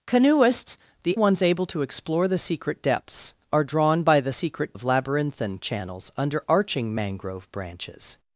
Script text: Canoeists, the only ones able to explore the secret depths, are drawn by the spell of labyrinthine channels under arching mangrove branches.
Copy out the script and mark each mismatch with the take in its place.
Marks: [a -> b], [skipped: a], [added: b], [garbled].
Canoeists, the [skipped: only] ones able to explore the secret depths, are drawn by the [spell -> secret] of labyrinthine channels under arching mangrove branches.